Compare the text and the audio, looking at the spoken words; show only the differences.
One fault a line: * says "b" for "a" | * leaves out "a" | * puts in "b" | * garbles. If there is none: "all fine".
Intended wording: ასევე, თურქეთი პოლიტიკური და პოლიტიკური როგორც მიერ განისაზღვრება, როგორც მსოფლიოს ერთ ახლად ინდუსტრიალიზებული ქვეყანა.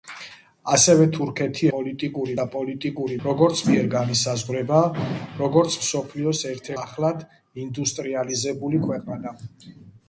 all fine